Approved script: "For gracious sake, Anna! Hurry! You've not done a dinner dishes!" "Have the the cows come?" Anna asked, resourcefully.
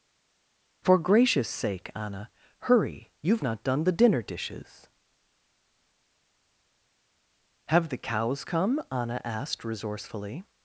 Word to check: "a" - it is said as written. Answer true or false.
false